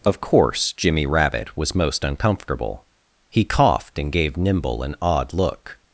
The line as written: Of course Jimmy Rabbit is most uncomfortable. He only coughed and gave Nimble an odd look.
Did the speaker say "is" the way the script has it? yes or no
no